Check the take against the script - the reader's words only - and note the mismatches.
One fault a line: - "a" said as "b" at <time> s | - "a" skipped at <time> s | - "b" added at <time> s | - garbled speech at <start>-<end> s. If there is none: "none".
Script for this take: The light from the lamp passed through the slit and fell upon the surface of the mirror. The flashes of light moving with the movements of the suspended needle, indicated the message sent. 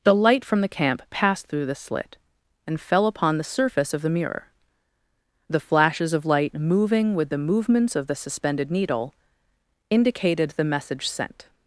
- "lamp" said as "camp" at 0.7 s